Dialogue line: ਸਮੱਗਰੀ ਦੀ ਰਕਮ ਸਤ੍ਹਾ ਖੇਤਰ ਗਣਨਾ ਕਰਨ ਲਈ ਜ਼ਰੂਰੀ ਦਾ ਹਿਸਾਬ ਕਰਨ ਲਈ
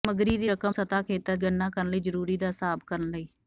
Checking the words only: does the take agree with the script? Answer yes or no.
yes